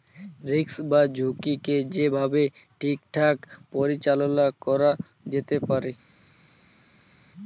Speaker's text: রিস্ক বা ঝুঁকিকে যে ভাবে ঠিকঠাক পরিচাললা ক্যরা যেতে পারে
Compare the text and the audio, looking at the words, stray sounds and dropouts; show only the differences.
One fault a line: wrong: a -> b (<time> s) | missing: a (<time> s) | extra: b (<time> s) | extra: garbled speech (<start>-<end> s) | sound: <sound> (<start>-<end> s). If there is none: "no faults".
no faults